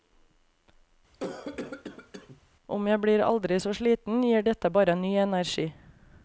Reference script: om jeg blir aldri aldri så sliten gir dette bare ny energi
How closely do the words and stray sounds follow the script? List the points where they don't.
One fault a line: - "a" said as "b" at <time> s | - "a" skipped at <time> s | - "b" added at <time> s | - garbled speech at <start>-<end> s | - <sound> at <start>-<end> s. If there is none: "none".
- cough at 1.1-2.4 s
- "aldri" skipped at 3.6 s